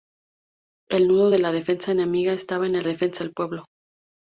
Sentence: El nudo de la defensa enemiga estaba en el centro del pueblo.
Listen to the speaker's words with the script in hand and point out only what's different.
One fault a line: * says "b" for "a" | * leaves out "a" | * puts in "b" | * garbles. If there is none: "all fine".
* says "defensa" for "centro"